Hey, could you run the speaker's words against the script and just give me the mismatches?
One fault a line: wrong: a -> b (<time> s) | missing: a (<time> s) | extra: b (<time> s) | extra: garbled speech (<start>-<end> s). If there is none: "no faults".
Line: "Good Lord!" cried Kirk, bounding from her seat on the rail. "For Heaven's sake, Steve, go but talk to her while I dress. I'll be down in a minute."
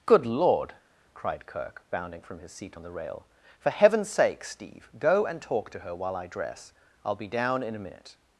wrong: her -> his (2.4 s)
wrong: but -> and (5.2 s)